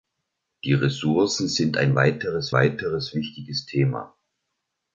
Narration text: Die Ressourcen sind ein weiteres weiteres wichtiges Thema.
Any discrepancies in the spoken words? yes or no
no